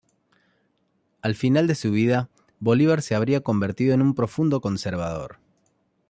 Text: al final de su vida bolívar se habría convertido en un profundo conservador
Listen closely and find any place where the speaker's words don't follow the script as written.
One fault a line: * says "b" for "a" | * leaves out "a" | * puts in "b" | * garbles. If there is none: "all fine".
all fine